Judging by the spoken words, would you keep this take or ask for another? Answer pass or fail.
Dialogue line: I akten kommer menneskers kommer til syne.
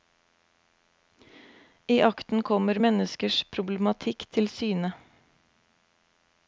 fail